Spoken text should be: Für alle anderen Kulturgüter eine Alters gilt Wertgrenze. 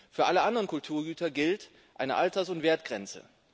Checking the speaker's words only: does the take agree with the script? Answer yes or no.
no